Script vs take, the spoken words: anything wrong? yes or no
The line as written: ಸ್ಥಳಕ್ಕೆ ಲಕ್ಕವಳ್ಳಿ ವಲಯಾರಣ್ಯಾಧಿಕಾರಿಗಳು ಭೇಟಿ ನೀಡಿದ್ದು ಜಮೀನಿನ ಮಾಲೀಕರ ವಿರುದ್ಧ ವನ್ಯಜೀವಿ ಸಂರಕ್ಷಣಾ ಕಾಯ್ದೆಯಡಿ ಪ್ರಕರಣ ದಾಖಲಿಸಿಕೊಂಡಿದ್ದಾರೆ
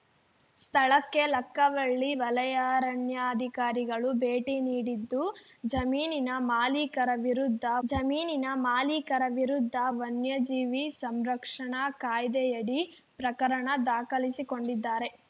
yes